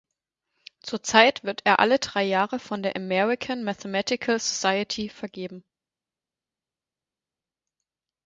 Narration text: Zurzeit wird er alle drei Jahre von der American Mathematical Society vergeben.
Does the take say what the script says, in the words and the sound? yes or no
yes